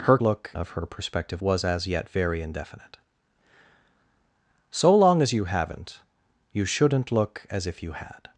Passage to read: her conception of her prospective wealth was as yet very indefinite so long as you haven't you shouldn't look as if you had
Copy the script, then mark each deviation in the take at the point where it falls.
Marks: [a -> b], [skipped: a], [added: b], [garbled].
her [conception -> look] of her prospective [skipped: wealth] was as yet very indefinite so long as you haven't you shouldn't look as if you had